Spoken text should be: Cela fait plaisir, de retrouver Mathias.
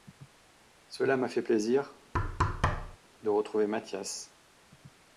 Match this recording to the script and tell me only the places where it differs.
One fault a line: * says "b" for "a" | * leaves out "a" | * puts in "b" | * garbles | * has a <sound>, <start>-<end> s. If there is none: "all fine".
* puts in "m'a"
* has a thud, 2.1-3.0 s